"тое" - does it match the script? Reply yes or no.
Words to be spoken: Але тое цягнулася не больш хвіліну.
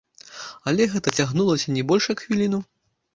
no